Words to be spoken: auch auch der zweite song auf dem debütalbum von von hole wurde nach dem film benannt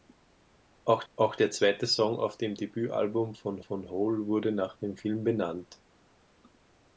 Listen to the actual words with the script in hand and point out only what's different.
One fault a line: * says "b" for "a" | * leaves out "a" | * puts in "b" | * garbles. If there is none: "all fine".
all fine